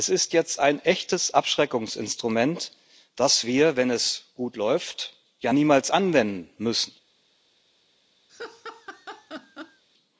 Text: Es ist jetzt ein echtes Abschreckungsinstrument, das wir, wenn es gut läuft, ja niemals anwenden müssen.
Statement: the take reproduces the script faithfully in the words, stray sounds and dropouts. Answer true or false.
false